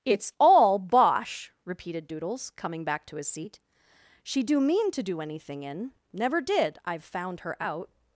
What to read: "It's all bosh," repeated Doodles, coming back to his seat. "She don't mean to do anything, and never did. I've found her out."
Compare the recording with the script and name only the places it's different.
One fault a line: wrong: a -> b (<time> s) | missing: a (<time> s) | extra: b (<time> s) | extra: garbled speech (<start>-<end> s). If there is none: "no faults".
wrong: don't -> do (4.4 s)
wrong: and -> in (5.6 s)